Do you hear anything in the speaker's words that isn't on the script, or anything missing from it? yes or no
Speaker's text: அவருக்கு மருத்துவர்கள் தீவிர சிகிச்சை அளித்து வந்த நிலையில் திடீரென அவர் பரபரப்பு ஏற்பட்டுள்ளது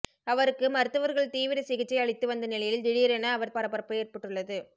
no